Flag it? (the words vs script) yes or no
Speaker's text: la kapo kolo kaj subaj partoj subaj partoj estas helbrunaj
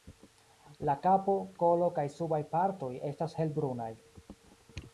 yes